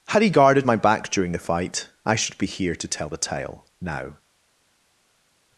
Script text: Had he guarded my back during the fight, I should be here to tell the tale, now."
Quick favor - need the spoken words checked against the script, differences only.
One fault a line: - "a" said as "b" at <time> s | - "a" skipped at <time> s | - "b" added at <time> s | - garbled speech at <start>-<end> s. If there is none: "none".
none